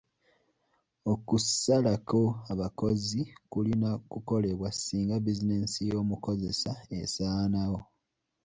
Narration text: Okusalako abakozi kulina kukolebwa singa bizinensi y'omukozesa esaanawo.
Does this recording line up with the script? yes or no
yes